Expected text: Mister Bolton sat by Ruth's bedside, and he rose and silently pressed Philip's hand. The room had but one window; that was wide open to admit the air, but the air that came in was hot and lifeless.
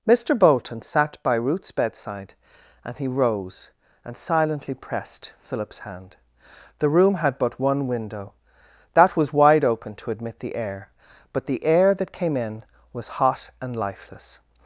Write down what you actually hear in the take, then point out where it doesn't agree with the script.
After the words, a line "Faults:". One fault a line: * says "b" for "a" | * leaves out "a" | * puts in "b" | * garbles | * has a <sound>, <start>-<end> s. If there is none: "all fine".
Mister Bolton sat by Ruth's bedside, and he rose and silently pressed Philip's hand. The room had but one window; that was wide open to admit the air, but the air that came in was hot and lifeless.
Faults:
all fine